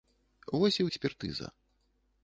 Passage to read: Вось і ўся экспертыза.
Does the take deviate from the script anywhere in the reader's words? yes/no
yes